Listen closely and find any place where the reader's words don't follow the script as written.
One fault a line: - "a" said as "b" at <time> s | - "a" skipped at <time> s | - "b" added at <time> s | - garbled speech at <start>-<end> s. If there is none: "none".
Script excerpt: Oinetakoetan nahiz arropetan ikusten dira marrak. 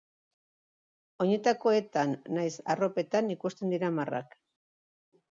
none